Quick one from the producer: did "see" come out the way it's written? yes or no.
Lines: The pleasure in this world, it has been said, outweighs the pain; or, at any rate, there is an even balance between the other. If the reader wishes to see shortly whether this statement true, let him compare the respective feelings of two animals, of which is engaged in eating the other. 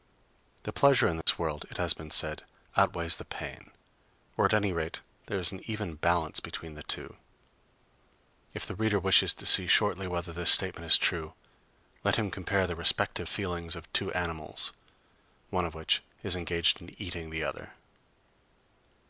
yes